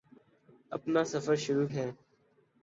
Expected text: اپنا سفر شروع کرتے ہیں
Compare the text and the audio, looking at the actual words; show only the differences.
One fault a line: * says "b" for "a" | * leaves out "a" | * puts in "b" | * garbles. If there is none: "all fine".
* leaves out "کرتے"